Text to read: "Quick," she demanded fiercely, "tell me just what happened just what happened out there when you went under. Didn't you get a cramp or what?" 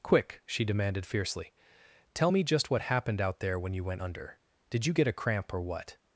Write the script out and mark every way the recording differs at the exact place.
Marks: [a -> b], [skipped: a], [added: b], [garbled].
"Quick," she demanded fiercely, "tell me just what happened [skipped: just what happened] out there when you went under. [Didn't -> Did] you get a cramp or what?"